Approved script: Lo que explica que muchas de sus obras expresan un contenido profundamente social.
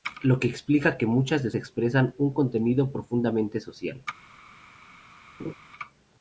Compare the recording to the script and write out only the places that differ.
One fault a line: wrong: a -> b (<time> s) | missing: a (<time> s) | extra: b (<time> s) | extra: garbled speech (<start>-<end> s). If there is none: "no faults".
missing: sus obras (1.5 s)